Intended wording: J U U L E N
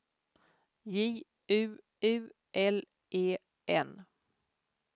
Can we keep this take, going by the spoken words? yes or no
yes